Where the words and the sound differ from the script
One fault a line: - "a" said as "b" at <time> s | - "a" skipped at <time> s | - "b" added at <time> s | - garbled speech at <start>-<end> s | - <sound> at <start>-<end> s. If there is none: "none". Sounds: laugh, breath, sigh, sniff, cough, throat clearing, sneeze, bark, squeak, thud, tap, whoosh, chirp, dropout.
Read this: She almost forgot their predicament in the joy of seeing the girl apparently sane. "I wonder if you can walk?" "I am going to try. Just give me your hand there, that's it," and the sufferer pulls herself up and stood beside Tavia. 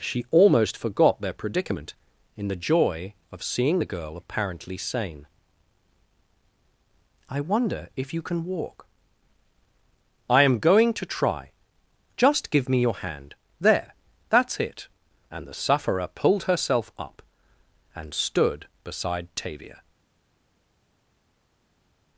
- "pulls" said as "pulled" at 16.1 s